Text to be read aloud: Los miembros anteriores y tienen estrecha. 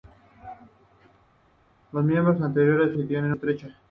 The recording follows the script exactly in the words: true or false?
true